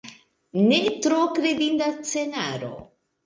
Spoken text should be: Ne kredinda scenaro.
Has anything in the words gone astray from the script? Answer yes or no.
yes